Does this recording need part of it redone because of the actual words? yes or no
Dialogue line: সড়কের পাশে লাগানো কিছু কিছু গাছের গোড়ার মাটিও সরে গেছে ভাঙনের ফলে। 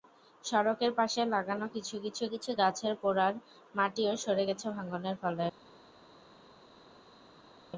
yes